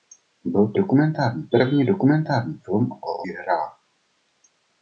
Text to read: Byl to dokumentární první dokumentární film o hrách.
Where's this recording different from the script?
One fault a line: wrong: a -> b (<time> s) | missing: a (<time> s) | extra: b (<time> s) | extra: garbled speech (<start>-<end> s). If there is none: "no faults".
no faults